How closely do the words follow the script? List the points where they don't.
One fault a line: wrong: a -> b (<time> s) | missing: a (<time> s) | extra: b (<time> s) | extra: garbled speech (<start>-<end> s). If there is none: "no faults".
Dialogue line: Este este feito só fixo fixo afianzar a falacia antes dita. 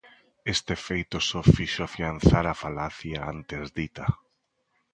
missing: este (0.7 s)
missing: fixo (1.8 s)